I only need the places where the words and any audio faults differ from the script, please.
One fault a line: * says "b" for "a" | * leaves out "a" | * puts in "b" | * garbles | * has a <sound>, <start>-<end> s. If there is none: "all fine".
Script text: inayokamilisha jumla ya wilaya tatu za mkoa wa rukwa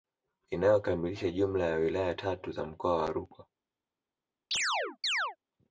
* has a chirp, 4.5-5.4 s